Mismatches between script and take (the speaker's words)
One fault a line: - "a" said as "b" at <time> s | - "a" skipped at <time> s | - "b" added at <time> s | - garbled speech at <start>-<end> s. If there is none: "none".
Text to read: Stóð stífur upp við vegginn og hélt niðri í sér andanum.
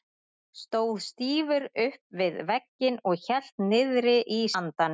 - "sér" skipped at 4.4 s